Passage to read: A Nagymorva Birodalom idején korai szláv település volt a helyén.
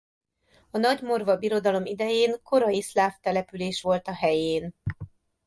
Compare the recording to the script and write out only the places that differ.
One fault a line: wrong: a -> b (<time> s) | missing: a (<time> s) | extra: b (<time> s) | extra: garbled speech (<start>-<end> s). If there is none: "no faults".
no faults